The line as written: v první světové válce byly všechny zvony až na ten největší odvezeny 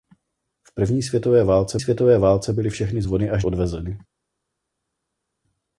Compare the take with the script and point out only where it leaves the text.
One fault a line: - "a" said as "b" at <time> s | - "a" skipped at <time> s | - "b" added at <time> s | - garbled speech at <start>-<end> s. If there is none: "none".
- "světové válce" added at 1.8 s
- "na ten největší" skipped at 3.5 s